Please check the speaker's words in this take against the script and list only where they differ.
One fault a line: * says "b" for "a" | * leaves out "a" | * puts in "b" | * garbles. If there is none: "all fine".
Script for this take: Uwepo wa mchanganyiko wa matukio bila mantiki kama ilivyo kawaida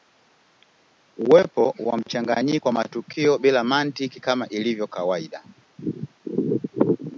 all fine